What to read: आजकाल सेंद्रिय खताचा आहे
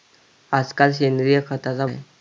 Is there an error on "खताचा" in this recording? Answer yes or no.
no